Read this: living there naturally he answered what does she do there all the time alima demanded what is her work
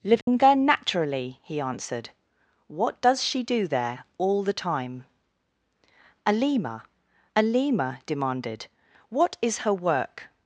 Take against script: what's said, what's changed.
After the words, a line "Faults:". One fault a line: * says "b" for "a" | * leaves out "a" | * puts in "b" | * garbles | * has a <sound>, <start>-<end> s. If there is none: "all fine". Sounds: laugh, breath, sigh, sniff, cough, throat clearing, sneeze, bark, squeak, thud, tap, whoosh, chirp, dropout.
living there naturally he answered what does she do there all the time alima alima demanded what is her work
Faults:
* has a dropout, 0.2-0.3 s
* puts in "alima"